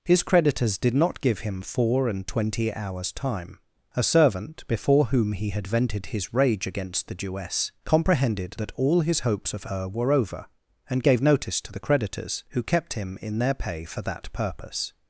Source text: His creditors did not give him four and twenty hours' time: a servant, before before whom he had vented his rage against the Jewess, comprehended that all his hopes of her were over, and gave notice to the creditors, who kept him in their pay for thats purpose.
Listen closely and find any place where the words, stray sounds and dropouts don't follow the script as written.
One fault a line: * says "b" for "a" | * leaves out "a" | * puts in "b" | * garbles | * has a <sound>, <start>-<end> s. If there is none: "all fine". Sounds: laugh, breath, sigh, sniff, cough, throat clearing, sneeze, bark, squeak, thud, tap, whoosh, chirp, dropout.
* leaves out "before"
* says "that" for "thats"